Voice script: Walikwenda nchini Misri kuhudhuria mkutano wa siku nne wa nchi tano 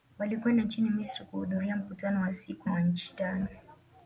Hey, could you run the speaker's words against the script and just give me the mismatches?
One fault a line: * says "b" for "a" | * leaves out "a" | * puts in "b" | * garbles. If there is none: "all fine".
* leaves out "nne"